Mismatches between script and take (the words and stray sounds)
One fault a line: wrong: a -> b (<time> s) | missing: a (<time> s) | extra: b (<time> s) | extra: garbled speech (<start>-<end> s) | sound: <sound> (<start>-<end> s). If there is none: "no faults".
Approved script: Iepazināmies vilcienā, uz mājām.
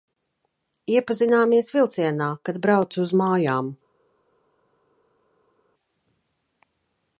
extra: kad braucu (2.5 s)